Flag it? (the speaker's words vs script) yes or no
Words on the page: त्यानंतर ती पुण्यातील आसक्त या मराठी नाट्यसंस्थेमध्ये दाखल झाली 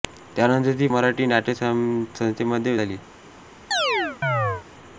yes